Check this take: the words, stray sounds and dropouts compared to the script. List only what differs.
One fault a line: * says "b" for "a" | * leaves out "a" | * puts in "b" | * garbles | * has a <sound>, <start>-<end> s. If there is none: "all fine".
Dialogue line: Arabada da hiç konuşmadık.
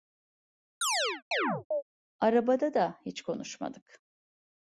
* has a chirp, 0.8-1.8 s